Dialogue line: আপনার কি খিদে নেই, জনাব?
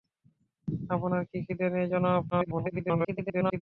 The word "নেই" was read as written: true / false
true